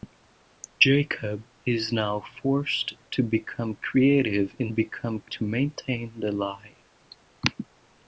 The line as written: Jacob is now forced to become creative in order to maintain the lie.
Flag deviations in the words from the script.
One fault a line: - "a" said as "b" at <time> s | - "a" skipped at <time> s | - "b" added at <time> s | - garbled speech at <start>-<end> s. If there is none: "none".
- "order" said as "become" at 4.7 s